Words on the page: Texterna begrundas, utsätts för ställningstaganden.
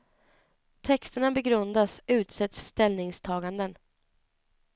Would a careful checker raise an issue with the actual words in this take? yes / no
yes